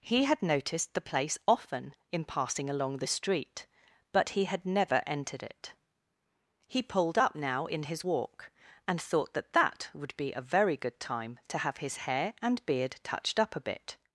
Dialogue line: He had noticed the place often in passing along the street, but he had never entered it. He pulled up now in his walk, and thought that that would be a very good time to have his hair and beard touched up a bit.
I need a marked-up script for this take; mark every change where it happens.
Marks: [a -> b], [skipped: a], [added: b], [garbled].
He had noticed the place often in passing along the street, but he had never entered it. He pulled up now in his walk, and thought that that would be a very good time to have his hair and beard touched up a bit.